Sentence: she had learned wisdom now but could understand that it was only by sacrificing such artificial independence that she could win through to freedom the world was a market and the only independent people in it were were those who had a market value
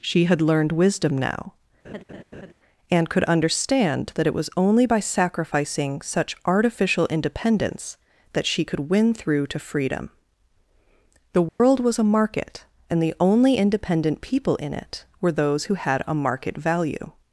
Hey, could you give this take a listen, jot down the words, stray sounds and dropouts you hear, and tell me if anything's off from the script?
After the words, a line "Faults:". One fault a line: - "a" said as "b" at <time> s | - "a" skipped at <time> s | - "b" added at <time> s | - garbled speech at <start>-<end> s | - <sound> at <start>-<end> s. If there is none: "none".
she had learned wisdom now and could understand that it was only by sacrificing such artificial independence that she could win through to freedom the world was a market and the only independent people in it were those who had a market value
Faults:
- laugh at 1.8-2.5 s
- "but" said as "and" at 2.9 s
- dropout at 11.5-11.6 s
- "were" skipped at 15.3 s